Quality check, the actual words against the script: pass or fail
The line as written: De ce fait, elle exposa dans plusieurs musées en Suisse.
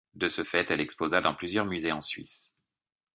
pass